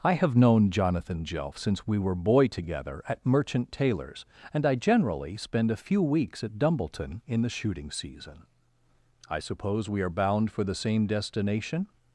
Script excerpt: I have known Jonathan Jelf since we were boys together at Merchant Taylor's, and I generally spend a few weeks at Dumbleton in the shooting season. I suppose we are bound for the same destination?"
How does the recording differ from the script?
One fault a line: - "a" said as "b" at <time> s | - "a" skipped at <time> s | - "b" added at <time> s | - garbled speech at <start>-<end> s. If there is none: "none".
- "boys" said as "boy" at 2.1 s